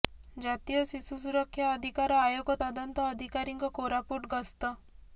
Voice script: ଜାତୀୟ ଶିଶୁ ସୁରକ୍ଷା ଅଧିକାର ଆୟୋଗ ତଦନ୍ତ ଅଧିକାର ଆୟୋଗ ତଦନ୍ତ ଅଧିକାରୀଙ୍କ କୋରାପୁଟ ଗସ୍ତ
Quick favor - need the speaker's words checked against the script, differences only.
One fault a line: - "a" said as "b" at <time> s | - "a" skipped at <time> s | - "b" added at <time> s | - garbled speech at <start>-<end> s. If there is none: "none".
- "ଅଧିକାର ଆୟୋଗ ତଦନ୍ତ" skipped at 3.1 s